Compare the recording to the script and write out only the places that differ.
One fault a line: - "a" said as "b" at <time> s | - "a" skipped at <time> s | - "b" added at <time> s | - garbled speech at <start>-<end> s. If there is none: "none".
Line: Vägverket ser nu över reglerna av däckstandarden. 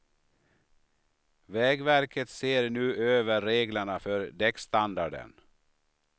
- "av" said as "för" at 4.0 s